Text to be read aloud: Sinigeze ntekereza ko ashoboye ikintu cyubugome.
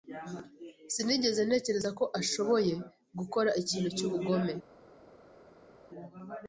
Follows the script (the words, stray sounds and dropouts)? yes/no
no